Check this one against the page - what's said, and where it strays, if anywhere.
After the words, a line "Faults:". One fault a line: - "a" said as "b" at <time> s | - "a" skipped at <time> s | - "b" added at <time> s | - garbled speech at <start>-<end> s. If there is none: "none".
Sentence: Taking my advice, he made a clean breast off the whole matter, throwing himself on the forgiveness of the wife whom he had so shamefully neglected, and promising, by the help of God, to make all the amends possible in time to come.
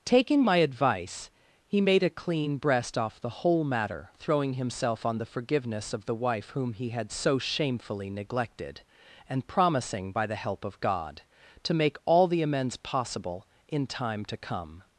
Taking my advice, he made a clean breast off the whole matter, throwing himself on the forgiveness of the wife whom he had so shamefully neglected, and promising, by the help of God, to make all the amends possible in time to come.
Faults:
none